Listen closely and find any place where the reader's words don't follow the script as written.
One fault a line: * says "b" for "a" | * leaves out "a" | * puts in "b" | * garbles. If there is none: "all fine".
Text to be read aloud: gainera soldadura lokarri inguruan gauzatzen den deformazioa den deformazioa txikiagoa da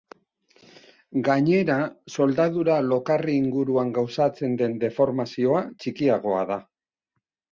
* leaves out "den deformazioa"